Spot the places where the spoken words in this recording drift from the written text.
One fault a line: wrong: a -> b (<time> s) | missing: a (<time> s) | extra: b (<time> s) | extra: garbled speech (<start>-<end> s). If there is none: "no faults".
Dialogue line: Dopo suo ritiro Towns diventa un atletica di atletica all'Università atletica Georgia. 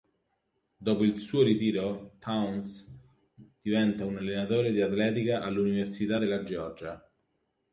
extra: il (1.0 s)
wrong: atletica -> allenatore (4.2 s)
wrong: atletica -> della (6.2 s)